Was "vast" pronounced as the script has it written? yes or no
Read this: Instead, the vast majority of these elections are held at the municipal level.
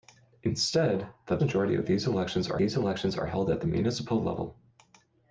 no